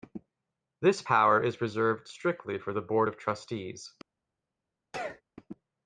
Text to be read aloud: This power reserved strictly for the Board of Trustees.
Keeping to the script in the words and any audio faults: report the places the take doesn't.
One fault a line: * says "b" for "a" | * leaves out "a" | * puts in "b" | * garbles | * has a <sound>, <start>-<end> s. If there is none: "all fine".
* puts in "is"
* has a sneeze, 4.9-5.2 s